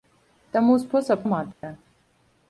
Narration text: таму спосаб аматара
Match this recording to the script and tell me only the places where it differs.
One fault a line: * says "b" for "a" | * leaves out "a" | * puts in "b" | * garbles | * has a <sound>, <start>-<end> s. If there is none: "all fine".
* has a dropout, 1.5-1.6 s